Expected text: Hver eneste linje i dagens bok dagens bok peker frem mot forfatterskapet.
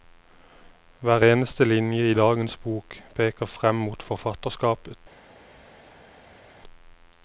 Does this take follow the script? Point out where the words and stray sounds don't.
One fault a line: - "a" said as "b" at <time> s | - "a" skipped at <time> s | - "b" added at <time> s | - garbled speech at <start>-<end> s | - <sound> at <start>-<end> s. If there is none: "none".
- "dagens bok" skipped at 3.0 s